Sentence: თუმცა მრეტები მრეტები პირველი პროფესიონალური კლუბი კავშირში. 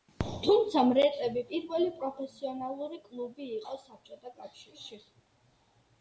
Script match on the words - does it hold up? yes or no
no